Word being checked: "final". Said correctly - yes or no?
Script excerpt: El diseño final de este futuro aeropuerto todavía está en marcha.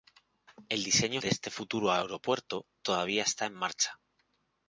no